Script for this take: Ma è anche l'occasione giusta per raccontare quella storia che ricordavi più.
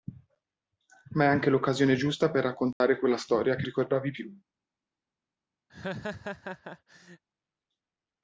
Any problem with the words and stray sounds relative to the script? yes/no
yes